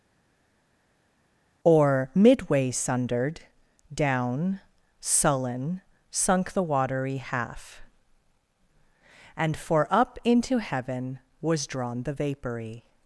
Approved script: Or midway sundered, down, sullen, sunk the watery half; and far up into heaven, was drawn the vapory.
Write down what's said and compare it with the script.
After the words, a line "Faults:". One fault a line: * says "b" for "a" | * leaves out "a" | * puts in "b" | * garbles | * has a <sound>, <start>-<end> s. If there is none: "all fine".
Or midway sundered, down, sullen, sunk the watery half; and for up into heaven, was drawn the vapory.
Faults:
* says "for" for "far"